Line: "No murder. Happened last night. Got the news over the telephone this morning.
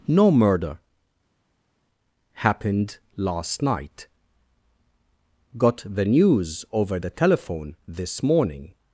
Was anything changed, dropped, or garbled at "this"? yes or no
no